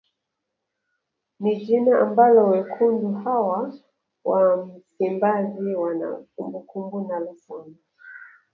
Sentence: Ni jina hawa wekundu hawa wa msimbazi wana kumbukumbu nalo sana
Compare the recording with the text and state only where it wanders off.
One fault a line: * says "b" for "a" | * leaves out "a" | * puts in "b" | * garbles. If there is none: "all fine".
* says "ambalo" for "hawa"